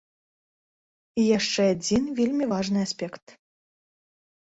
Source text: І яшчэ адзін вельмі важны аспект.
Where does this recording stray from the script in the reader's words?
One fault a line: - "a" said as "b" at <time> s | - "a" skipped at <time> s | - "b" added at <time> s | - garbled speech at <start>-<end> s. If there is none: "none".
none